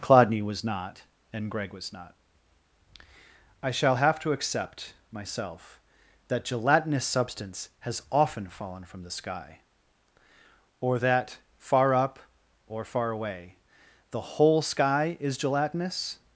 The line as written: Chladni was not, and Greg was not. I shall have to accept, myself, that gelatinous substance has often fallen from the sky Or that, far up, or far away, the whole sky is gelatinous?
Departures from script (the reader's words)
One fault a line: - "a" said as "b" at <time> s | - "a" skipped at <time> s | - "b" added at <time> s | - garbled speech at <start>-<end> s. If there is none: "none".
none